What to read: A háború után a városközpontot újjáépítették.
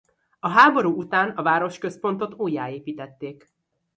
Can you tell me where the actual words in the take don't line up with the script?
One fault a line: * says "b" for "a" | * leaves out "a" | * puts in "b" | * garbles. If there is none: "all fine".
all fine